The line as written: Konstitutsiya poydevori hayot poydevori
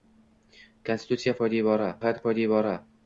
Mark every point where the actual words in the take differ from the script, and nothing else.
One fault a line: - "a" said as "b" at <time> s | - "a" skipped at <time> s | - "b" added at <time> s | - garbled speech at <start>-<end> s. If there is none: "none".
none